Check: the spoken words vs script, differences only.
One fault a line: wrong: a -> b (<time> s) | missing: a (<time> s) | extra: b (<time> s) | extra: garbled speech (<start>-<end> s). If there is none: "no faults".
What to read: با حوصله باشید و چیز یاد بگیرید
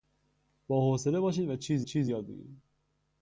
extra: چیز (1.8 s)